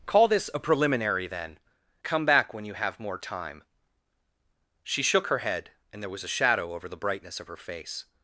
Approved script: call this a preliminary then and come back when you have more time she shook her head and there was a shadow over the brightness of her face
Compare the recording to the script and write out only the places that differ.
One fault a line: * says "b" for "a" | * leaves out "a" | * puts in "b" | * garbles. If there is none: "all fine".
* leaves out "and"